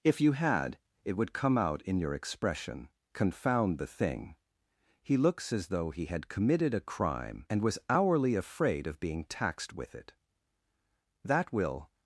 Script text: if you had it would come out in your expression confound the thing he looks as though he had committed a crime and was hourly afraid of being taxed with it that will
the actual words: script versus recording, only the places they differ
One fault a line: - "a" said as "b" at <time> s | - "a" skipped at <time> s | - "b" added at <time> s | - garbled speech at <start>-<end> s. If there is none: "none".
none